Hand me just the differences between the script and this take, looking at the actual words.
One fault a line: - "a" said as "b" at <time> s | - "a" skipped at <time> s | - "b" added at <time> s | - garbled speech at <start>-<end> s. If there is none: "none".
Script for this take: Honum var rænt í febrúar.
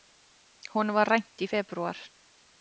none